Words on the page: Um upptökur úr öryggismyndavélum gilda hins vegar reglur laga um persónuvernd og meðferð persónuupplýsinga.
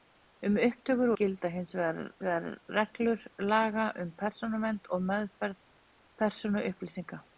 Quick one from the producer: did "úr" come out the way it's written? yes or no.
no